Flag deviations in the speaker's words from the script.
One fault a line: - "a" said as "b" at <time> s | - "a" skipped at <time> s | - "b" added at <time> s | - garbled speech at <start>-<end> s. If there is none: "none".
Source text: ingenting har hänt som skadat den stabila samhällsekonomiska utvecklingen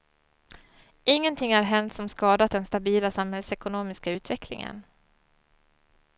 none